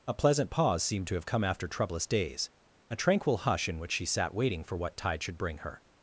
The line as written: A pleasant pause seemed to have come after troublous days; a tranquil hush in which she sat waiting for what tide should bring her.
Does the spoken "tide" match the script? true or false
true